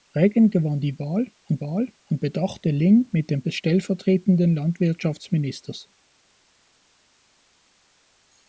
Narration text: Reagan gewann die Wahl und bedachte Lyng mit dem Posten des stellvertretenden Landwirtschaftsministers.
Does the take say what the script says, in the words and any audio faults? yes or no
no